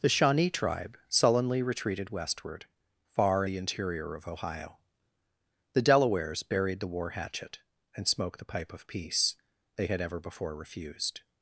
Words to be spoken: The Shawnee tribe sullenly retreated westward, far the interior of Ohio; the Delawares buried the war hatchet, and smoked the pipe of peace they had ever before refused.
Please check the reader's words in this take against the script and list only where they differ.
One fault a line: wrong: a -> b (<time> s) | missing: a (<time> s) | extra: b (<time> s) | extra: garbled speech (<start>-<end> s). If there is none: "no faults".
no faults